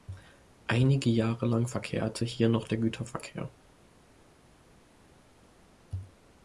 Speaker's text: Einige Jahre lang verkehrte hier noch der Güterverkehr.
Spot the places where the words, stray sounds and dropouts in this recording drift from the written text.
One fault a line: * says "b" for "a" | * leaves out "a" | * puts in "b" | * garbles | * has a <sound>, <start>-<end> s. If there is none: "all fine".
all fine